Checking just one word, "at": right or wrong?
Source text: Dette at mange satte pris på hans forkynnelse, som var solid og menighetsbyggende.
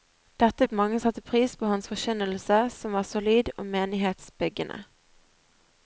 right